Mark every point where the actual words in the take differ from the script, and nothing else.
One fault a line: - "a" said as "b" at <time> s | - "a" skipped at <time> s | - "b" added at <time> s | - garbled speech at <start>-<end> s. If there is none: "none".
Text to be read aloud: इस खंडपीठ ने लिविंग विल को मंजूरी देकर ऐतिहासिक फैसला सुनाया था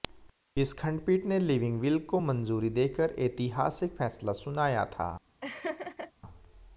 none